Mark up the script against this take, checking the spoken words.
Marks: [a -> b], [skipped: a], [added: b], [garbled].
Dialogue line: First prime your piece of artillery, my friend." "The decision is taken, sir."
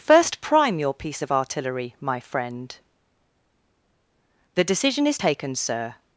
First prime your piece of artillery, my friend." "The decision is taken, sir."